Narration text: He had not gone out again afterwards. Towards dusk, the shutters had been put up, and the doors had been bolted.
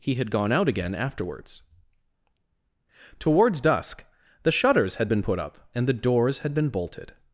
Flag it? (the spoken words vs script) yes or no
yes